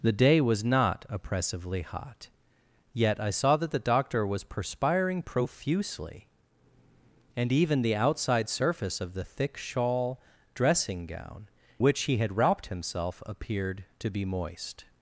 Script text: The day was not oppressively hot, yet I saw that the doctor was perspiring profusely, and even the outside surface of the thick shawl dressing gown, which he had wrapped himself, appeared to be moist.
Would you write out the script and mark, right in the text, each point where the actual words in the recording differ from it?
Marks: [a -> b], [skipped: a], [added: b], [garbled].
The day was not oppressively hot, yet I saw that the doctor was perspiring profusely, and even the outside surface of the thick shawl dressing gown, which he had wrapped himself, appeared to be moist.